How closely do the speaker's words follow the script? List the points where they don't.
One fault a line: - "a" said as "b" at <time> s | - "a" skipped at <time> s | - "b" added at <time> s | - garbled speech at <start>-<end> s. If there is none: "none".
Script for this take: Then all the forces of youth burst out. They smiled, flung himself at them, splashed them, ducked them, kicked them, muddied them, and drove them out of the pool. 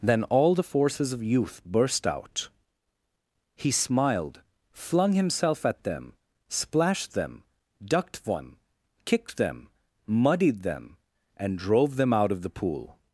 - "They" said as "He" at 3.5 s